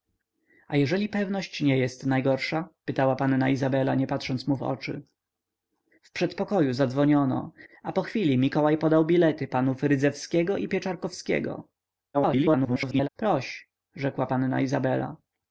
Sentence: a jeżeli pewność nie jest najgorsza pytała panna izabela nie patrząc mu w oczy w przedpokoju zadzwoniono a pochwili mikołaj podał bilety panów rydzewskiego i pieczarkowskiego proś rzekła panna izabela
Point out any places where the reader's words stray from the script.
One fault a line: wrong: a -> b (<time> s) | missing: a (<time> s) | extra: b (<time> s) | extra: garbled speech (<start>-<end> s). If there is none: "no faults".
extra: garbled speech (12.1-13.1 s)